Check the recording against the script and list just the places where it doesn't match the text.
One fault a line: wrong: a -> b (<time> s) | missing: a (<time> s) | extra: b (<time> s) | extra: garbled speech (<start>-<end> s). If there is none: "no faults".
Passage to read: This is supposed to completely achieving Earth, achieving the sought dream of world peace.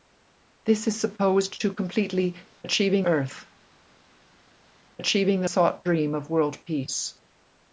no faults